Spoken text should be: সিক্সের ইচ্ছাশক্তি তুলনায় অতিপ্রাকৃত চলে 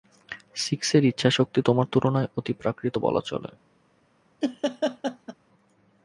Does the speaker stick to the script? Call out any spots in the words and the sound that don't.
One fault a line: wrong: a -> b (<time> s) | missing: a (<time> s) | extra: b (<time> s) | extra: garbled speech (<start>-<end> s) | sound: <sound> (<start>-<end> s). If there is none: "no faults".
extra: তোমার (1.6 s)
extra: বলা (3.0 s)
sound: laugh (4.4-5.3 s)